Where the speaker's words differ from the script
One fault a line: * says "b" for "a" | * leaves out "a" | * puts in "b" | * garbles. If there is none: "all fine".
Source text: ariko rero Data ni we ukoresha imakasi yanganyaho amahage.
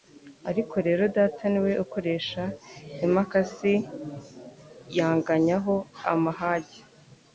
all fine